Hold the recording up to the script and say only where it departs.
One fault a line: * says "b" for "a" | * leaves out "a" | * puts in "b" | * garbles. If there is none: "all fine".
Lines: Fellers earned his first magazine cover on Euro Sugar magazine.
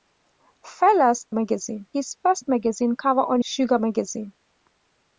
* says "magazine" for "earned"
* leaves out "Euro"